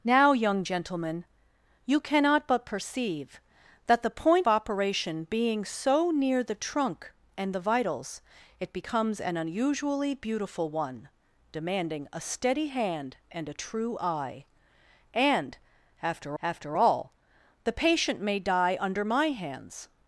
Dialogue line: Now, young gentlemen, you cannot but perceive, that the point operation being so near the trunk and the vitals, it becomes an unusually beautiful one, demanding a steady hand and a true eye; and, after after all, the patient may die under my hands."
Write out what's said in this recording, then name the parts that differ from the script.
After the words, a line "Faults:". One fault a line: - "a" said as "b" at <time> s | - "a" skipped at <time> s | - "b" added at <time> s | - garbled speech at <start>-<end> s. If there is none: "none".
Now, young gentlemen, you cannot but perceive, that the point operation being so near the trunk and the vitals, it becomes an unusually beautiful one, demanding a steady hand and a true eye; and, after after all, the patient may die under my hands."
Faults:
none